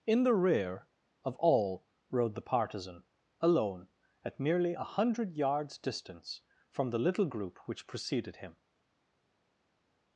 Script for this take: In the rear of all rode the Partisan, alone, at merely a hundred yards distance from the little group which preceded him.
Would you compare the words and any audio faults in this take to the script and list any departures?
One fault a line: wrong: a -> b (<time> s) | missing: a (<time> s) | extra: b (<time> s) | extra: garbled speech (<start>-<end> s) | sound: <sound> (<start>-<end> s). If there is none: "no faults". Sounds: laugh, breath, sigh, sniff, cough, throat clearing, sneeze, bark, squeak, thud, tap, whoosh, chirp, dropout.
no faults